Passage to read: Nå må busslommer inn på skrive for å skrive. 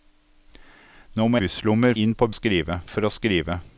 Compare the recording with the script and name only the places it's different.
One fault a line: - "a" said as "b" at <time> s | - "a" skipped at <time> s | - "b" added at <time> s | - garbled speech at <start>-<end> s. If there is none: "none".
none